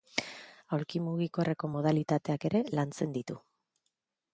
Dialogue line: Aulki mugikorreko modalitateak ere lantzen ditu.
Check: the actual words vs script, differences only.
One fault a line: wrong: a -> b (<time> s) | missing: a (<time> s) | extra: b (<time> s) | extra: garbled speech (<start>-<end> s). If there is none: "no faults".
no faults